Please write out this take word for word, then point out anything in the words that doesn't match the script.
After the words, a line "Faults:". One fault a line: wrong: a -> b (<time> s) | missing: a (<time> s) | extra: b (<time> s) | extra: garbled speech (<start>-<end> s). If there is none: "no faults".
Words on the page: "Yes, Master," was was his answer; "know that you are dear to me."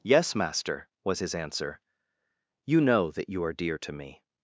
"Yes, Master," was his answer; "you know that you are dear to me."
Faults:
missing: was (1.2 s)
extra: you (2.7 s)